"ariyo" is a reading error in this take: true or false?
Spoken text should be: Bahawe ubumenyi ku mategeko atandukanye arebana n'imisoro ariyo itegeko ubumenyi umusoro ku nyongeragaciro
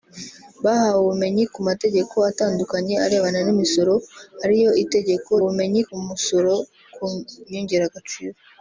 false